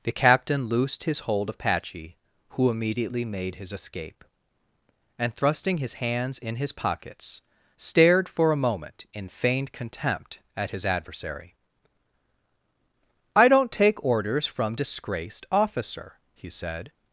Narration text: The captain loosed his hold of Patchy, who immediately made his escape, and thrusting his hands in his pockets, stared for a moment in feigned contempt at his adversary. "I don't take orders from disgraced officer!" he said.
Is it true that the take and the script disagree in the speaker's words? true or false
false